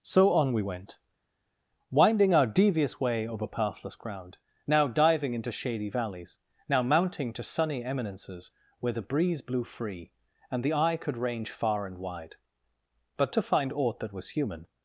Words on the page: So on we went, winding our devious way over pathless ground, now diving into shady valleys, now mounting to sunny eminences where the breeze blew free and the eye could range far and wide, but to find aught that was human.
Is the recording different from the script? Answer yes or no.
no